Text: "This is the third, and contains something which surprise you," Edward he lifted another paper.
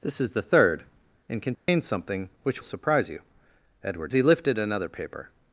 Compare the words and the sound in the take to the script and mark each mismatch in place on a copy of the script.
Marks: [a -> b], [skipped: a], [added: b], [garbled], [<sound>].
"This is the third, and contains [dropout] something which surprise you," Edward he lifted another paper.